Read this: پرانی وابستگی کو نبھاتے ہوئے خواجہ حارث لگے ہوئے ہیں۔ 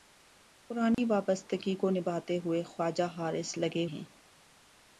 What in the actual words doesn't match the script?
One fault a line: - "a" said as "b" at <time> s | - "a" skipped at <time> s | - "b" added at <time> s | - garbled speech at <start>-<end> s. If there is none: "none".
- "ہوئے" skipped at 3.9 s